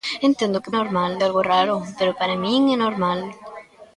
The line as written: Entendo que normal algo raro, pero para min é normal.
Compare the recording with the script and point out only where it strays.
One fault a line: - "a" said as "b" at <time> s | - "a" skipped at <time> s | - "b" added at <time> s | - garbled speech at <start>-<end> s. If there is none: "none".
none